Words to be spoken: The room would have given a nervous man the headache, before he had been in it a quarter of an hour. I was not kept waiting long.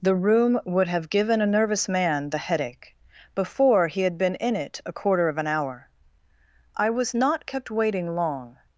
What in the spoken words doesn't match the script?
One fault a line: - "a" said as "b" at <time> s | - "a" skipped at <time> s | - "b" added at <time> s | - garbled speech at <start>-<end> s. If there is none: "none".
none